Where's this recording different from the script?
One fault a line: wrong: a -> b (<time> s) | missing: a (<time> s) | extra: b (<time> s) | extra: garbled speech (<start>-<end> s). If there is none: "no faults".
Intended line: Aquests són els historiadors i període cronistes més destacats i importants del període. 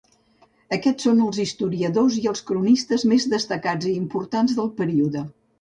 wrong: període -> els (2.3 s)